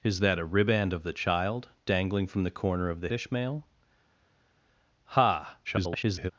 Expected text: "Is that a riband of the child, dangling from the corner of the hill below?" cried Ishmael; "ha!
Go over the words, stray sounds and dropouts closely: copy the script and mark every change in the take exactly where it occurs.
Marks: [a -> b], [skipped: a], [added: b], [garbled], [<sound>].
"Is that a riband of the child, dangling from the corner of the [skipped: hill below?" cried] Ishmael; "ha! [garbled]